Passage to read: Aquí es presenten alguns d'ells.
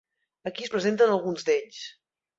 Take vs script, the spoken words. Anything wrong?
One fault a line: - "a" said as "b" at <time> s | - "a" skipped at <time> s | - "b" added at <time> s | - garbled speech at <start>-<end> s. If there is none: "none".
none